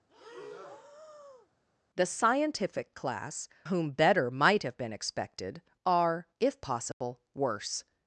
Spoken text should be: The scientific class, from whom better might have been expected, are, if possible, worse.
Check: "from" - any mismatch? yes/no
yes